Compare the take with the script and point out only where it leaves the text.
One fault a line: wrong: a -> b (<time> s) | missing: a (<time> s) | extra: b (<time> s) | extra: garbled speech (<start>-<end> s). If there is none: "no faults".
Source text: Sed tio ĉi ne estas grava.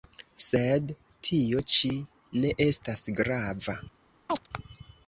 no faults